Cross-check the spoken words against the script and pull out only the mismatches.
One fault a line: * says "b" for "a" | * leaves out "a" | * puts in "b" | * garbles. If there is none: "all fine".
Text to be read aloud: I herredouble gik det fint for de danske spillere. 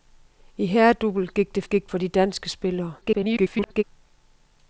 * says "gik" for "fint"
* garbles